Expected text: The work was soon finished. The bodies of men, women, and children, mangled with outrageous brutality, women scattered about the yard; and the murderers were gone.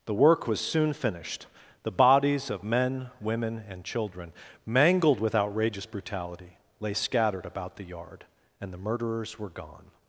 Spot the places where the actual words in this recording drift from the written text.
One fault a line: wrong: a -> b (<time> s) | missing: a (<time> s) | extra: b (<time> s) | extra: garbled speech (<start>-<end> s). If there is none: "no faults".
wrong: women -> lay (6.8 s)